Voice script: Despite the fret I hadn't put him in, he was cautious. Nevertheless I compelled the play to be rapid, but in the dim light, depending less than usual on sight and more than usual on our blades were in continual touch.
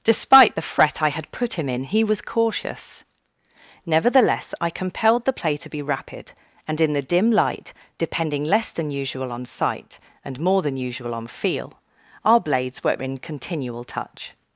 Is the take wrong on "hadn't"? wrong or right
wrong